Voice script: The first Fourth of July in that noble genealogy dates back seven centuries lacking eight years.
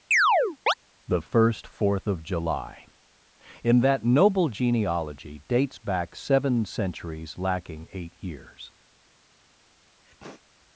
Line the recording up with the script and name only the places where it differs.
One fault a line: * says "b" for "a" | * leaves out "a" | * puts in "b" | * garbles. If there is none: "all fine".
all fine